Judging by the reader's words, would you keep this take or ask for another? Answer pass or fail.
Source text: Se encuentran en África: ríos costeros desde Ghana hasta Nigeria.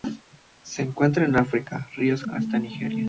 fail